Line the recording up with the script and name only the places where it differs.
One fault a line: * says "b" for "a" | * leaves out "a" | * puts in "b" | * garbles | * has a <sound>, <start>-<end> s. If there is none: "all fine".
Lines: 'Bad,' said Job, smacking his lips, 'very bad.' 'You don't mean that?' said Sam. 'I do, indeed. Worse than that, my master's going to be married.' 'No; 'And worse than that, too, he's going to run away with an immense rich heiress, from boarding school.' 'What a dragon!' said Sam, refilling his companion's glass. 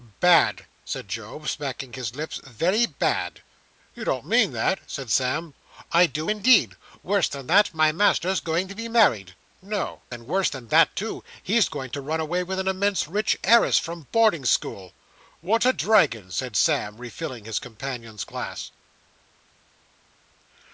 all fine